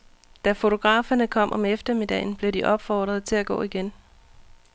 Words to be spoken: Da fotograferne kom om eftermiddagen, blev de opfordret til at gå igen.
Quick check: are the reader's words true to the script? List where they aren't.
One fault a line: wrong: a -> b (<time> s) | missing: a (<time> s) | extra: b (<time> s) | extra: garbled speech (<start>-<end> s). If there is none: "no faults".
no faults